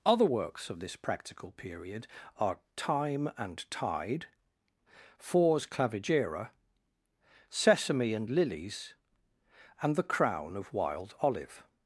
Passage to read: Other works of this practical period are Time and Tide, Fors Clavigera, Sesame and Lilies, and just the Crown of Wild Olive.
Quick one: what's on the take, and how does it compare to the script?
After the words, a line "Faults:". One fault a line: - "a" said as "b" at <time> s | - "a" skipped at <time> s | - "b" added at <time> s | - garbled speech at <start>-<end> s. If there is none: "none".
Other works of this practical period are Time and Tide, Fors Clavigera, Sesame and Lilies, and the Crown of Wild Olive.
Faults:
- "just" skipped at 9.9 s